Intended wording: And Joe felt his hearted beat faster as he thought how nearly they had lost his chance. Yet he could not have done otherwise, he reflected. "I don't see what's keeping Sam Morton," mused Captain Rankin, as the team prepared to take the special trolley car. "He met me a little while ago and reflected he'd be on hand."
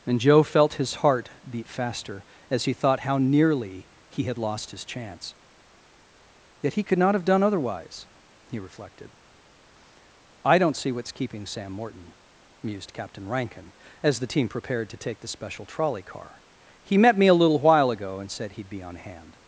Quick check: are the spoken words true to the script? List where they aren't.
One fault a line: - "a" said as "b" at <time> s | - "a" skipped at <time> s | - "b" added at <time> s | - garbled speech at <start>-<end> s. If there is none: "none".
- "hearted" said as "heart" at 0.9 s
- "they" said as "he" at 4.1 s
- "reflected" said as "said" at 18.3 s